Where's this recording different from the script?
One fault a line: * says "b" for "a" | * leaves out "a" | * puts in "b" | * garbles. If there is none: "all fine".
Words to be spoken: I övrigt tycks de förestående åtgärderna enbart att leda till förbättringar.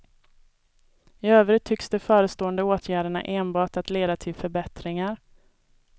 all fine